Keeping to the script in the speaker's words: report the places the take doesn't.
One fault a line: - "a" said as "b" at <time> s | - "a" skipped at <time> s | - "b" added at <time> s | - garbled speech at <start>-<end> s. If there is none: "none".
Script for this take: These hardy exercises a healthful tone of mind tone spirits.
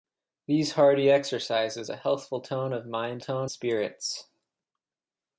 none